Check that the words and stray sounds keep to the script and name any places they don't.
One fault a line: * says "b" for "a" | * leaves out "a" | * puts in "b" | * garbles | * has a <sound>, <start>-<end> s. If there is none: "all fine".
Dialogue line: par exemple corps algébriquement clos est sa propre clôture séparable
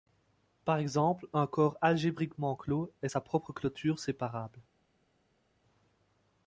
* puts in "un"